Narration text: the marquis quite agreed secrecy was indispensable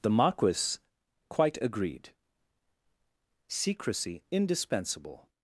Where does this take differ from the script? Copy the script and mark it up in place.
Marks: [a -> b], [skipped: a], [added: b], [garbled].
the marquis quite agreed secrecy [skipped: was] indispensable